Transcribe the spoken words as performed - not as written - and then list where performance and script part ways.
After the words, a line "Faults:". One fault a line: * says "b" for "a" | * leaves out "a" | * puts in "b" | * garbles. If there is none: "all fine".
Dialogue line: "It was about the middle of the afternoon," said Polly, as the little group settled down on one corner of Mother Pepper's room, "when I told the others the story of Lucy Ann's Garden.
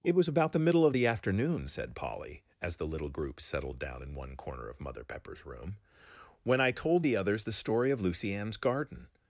"It was about the middle of the afternoon," said Polly, as the little group settled down in one corner of Mother Pepper's room, "when I told the others the story of Lucy Ann's Garden.
Faults:
* says "in" for "on"